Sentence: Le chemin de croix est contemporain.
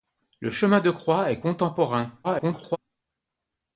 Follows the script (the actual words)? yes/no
no